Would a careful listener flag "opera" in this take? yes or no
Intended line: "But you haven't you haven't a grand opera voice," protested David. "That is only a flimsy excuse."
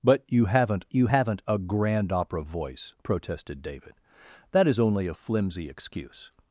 no